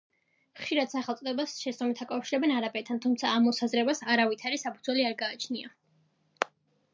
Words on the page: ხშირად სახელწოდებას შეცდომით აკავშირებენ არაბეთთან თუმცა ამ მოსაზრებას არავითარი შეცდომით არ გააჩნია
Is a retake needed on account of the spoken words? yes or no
yes